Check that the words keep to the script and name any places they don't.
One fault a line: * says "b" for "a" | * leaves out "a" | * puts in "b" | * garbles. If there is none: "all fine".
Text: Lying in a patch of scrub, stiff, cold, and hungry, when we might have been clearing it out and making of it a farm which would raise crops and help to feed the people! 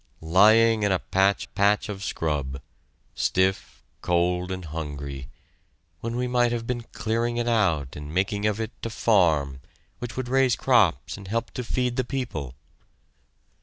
* puts in "patch"